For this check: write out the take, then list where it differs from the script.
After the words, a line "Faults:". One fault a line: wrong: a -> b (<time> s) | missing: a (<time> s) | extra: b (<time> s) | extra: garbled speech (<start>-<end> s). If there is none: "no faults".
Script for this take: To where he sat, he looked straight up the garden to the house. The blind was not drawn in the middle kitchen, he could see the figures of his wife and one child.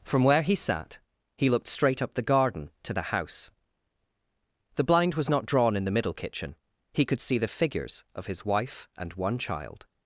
From where he sat, he looked straight up the garden to the house. The blind was not drawn in the middle kitchen, he could see the figures of his wife and one child.
Faults:
wrong: To -> From (0.0 s)